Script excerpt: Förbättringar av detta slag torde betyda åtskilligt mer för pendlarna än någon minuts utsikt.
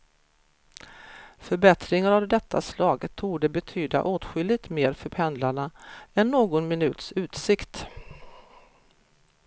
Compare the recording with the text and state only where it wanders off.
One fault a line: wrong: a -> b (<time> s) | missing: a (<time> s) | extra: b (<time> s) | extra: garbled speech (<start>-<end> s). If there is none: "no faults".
no faults